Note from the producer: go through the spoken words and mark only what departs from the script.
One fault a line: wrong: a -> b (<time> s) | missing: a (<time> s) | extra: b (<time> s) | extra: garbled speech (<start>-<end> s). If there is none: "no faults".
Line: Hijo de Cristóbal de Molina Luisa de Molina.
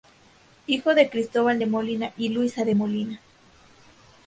extra: y (2.2 s)